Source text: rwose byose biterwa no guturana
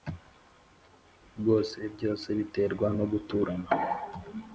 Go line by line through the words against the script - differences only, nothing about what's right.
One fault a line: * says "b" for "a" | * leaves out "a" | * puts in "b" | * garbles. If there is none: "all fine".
all fine